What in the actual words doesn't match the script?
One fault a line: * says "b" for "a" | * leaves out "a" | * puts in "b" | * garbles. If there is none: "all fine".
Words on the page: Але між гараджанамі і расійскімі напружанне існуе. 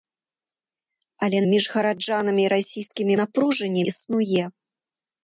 all fine